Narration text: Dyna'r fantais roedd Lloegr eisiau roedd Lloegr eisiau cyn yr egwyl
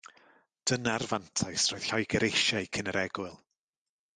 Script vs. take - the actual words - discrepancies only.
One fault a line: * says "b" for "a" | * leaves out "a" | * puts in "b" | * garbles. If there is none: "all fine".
* leaves out "roedd Lloegr eisiau"